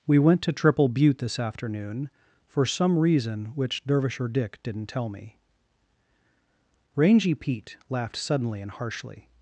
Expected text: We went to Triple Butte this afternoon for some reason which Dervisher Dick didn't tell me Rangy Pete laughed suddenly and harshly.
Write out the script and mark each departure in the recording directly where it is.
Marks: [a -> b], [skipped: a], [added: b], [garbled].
We went to Triple Butte this afternoon for some reason which Dervisher Dick didn't tell me Rangy Pete laughed suddenly and harshly.